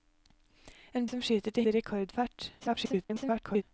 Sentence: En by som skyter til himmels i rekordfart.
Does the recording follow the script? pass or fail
fail